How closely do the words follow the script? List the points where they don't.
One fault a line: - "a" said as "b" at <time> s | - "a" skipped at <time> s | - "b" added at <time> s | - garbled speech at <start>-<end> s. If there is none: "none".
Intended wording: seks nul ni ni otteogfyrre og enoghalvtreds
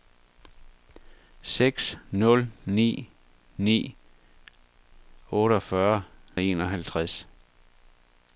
none